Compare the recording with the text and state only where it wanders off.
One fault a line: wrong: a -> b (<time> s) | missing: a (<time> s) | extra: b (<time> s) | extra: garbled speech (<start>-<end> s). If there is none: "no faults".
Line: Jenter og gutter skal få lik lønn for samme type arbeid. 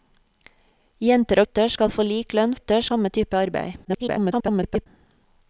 missing: og (1.4 s)
wrong: for -> gutter (2.5 s)
extra: garbled speech (3.8-4.9 s)